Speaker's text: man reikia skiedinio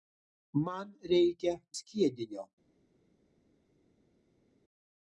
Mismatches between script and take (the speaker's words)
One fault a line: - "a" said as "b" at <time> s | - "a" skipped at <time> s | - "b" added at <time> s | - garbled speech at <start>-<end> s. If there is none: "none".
none